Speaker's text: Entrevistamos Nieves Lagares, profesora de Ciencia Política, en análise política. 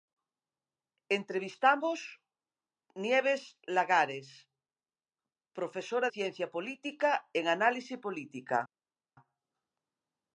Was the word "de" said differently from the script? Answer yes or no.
yes